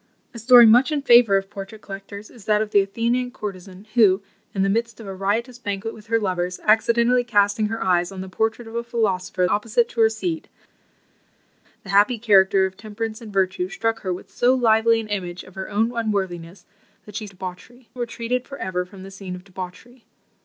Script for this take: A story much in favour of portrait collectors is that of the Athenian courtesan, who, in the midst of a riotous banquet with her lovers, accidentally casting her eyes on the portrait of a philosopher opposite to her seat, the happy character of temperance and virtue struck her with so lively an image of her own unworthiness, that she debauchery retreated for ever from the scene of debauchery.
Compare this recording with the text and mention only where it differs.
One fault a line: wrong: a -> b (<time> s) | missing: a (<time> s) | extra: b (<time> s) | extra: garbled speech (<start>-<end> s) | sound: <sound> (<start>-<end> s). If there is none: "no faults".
no faults